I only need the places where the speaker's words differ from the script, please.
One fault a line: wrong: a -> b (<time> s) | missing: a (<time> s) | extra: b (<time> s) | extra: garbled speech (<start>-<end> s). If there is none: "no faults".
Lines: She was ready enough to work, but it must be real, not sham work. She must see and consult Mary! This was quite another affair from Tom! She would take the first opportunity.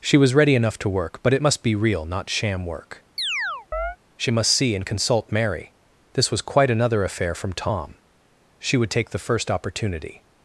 no faults